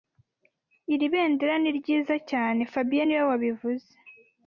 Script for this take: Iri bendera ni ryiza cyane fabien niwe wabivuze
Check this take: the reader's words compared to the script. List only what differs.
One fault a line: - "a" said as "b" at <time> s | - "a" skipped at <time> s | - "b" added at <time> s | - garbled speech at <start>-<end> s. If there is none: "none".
none